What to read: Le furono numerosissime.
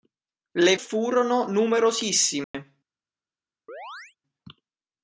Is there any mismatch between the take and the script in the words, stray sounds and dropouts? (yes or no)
yes